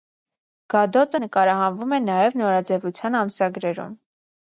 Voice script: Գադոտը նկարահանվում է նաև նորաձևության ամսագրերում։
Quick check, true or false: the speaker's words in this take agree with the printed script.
true